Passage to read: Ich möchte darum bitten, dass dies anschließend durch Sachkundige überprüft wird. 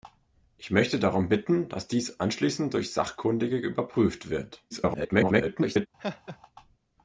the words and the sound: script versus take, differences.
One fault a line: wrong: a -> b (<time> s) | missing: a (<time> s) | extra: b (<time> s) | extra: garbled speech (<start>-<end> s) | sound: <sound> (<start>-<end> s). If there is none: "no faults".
extra: garbled speech (4.7-5.9 s)
sound: laugh (6.0-6.4 s)